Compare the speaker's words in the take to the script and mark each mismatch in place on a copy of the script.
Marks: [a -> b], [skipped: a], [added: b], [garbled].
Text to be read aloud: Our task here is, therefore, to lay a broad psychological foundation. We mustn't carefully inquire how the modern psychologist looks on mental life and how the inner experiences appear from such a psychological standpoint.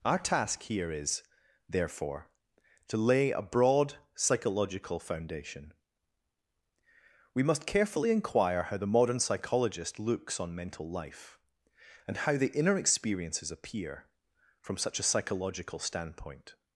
Our task here is, therefore, to lay a broad psychological foundation. We [mustn't -> must] carefully inquire how the modern psychologist looks on mental life and how the inner experiences appear from such a psychological standpoint.